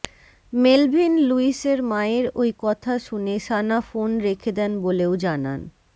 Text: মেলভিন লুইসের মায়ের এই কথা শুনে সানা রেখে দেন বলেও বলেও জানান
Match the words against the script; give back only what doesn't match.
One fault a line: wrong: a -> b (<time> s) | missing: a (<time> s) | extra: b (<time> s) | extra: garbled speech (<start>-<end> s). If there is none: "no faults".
wrong: এই -> ওই (2.4 s)
extra: ফোন (3.8 s)
missing: বলেও (5.1 s)